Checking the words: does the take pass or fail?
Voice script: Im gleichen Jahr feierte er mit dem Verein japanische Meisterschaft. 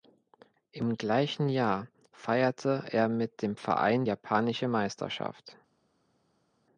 pass